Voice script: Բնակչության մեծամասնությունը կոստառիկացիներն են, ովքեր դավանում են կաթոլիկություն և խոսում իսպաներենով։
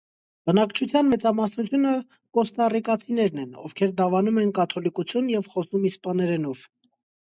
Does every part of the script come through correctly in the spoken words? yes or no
yes